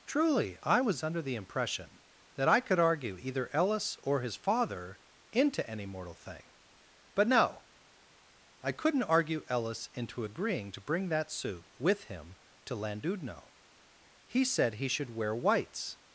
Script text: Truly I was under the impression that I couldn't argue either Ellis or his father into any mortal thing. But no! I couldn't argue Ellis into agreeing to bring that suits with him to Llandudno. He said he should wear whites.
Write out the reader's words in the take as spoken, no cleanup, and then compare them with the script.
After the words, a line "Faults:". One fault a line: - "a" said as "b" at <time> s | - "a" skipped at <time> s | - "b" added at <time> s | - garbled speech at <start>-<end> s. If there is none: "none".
Truly I was under the impression that I could argue either Ellis or his father into any mortal thing. But no! I couldn't argue Ellis into agreeing to bring that suit with him to Llandudno. He said he should wear whites.
Faults:
- "couldn't" said as "could" at 2.6 s
- "suits" said as "suit" at 11.3 s